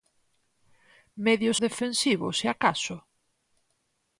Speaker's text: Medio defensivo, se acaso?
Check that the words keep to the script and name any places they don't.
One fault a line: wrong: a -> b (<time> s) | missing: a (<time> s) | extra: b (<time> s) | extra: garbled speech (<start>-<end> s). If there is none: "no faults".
no faults